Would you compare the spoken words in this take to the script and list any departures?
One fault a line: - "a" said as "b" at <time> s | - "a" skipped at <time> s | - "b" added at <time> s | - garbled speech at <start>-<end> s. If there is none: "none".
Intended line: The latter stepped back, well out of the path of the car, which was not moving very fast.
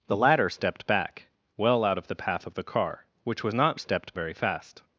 - "moving" said as "stepped" at 3.8 s